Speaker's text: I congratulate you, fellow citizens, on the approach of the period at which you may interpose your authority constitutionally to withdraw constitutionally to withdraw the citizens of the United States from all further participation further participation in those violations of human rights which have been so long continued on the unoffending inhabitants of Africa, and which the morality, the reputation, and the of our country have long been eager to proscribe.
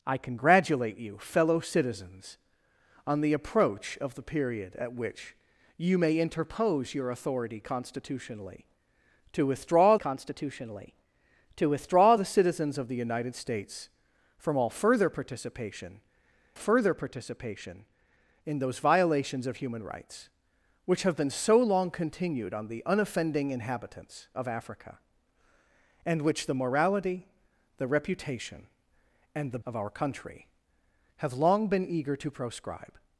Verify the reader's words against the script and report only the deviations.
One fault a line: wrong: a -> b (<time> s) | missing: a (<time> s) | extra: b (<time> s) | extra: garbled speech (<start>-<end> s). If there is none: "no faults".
no faults